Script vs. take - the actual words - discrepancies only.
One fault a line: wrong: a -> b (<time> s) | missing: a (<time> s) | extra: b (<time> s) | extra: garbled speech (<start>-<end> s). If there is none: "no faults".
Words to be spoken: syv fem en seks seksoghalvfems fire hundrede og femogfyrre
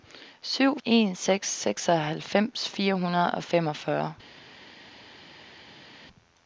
missing: fem (0.8 s)